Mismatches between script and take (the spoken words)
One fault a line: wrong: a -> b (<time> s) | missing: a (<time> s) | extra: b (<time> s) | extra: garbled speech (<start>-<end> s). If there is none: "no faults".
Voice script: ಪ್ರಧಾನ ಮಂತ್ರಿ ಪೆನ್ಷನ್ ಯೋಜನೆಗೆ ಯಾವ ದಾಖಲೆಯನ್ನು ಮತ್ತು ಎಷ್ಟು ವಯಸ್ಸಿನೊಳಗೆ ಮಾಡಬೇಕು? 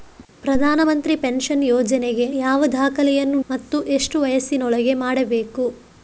no faults